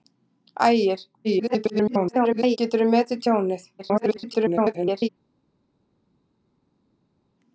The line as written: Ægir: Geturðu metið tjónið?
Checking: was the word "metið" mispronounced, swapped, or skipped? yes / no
no